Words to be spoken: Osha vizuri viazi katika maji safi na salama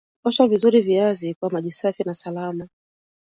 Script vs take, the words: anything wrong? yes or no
yes